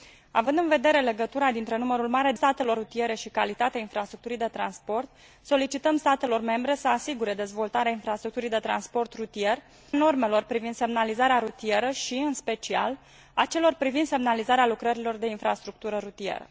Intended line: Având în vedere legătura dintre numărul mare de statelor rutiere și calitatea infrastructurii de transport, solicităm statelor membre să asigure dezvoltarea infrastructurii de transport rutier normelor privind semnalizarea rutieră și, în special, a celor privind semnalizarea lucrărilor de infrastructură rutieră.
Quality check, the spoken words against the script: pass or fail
pass